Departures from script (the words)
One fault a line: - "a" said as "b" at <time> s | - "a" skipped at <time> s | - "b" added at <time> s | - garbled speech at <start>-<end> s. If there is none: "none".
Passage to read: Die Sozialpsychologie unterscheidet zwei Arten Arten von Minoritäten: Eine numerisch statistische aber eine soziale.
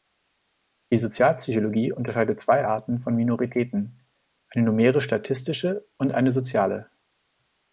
- "Arten" skipped at 3.0 s
- "aber" said as "und" at 6.0 s